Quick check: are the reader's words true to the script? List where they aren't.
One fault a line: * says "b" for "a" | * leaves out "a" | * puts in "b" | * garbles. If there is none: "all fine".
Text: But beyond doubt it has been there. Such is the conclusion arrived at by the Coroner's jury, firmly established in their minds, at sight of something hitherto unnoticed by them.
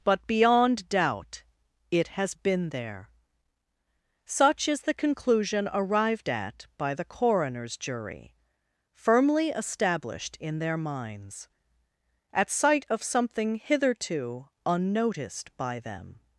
all fine